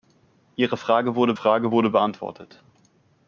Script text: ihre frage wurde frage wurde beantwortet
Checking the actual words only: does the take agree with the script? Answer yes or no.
yes